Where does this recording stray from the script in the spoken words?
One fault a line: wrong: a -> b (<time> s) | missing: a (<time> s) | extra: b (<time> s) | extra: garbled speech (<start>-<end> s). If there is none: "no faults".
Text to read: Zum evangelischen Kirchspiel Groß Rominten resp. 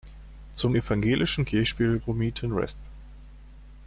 missing: Groß (2.0 s)